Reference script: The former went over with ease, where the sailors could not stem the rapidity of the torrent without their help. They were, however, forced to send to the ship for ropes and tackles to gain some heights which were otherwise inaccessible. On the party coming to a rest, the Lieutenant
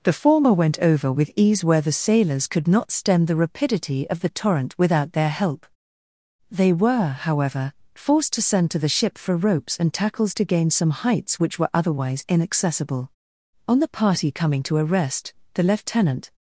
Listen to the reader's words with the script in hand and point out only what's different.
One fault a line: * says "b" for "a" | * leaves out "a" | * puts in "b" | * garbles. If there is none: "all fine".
all fine